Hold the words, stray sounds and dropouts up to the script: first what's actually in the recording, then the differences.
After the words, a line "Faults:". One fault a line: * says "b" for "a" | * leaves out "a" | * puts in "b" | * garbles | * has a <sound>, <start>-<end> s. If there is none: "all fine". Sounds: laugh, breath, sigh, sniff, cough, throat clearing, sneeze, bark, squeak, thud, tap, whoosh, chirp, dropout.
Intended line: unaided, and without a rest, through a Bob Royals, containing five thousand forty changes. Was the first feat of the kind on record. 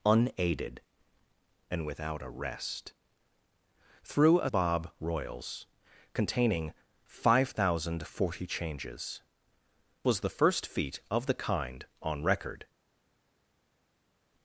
unaided, and without a rest, through a Bob Royals, containing five thousand forty changes. Was the first feat of the kind on record.
Faults:
all fine